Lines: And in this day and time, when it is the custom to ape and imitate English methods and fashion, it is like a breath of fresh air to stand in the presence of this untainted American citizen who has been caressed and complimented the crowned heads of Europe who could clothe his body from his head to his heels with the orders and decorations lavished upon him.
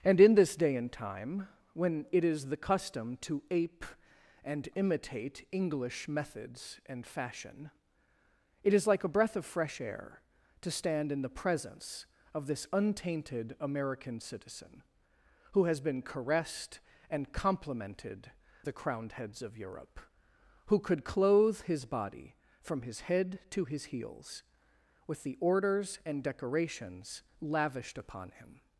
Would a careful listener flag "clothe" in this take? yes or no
no